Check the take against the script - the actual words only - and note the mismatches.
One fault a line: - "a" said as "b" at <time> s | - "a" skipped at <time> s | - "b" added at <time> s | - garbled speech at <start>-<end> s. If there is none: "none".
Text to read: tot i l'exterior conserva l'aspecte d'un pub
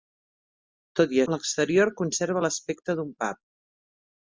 none